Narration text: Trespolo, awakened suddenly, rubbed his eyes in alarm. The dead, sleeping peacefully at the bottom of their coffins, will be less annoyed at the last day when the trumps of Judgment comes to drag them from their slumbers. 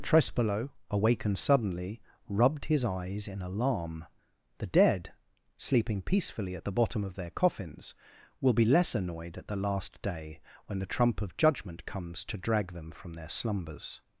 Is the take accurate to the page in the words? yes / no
no